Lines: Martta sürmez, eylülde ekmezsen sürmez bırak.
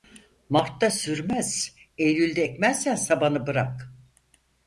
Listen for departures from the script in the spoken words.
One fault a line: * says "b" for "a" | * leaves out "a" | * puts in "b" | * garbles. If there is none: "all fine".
* says "sabanı" for "sürmez"